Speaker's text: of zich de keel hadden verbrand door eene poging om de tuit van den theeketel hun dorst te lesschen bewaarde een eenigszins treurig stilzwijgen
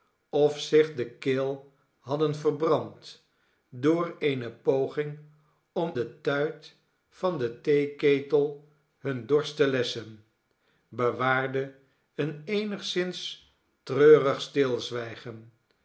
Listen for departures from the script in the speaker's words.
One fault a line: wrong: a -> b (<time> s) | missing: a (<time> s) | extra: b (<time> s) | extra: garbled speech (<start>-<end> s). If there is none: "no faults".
no faults